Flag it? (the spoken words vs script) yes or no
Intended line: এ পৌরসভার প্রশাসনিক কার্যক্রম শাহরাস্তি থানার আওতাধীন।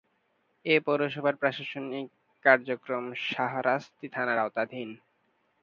no